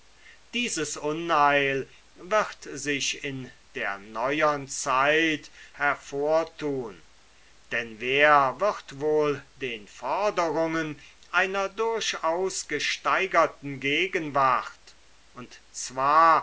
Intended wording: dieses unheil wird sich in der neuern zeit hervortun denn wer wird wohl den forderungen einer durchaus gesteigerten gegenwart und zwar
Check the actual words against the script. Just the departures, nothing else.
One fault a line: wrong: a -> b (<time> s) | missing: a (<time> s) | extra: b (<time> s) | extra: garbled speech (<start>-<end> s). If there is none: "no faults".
no faults